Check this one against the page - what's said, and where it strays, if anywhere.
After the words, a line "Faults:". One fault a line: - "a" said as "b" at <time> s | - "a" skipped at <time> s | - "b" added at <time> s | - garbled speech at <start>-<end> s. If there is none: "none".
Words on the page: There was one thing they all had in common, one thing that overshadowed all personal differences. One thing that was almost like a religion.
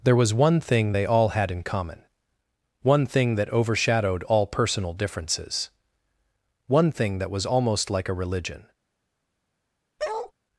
There was one thing they all had in common, one thing that overshadowed all personal differences. One thing that was almost like a religion.
Faults:
none